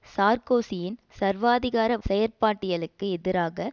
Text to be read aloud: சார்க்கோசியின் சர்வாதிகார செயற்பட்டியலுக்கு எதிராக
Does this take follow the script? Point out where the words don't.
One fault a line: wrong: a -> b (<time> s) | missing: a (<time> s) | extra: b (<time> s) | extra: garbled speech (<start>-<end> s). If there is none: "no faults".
no faults